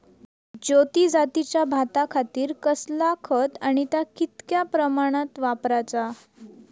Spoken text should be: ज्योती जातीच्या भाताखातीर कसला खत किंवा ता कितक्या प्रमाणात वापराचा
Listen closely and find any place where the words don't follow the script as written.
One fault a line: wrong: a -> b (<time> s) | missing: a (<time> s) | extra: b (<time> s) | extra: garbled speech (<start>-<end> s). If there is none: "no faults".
wrong: किंवा -> आणि (3.6 s)